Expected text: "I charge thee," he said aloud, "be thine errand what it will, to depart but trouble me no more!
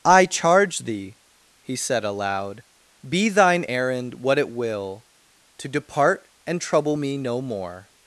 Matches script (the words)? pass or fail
fail